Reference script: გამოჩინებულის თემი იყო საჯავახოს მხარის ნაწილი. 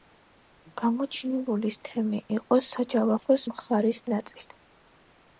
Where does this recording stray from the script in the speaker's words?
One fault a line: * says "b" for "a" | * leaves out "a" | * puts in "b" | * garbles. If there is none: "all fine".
all fine